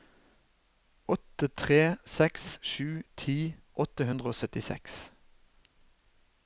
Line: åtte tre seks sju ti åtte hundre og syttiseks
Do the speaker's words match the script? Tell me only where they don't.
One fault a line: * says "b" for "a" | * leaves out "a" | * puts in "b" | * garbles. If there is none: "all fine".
all fine